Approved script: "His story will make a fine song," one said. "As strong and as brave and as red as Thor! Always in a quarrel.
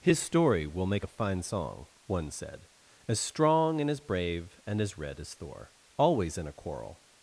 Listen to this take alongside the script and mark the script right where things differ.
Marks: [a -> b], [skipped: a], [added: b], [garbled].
"His story will make a fine song," one said. "As strong and as brave and as red as Thor! Always in a quarrel.